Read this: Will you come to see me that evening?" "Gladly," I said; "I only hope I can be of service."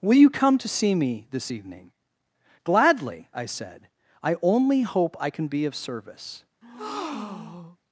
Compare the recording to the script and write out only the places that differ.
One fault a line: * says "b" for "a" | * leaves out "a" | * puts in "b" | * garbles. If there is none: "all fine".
* says "this" for "that"